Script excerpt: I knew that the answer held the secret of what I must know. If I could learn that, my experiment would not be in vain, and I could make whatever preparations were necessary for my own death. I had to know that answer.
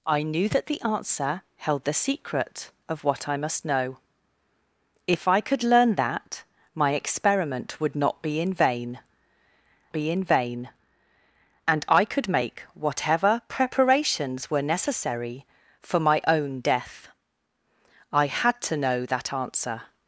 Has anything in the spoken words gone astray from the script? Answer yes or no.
yes